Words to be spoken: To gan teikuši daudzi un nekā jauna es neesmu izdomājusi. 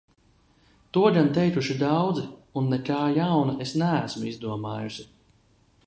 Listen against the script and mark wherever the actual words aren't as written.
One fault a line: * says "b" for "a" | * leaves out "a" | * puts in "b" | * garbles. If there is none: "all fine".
all fine